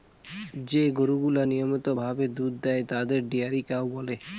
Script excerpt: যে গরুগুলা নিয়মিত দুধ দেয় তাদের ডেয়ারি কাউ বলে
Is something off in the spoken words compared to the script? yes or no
yes